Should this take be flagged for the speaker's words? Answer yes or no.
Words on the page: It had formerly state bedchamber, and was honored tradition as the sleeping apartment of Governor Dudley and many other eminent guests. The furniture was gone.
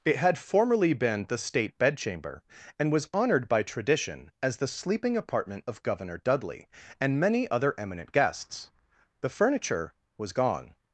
yes